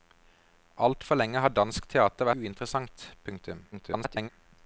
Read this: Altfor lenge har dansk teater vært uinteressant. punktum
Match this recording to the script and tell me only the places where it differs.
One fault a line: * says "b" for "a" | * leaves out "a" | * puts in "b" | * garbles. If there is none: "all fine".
* leaves out "vært"
* garbles